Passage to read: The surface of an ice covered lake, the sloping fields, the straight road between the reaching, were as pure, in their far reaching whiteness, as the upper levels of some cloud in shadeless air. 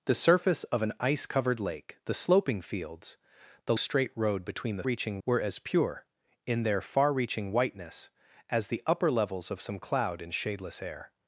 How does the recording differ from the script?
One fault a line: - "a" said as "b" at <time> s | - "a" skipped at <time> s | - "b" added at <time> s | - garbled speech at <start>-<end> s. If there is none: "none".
none